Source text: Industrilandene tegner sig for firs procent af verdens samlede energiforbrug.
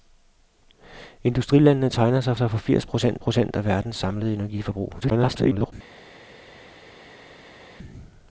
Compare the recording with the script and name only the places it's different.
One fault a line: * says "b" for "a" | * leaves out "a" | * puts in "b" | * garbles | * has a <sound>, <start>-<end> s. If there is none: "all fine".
* puts in "sig"
* puts in "procent"
* garbles